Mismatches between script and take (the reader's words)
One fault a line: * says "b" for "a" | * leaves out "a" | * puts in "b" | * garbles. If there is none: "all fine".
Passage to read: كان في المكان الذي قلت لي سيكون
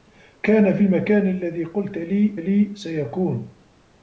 * puts in "لي"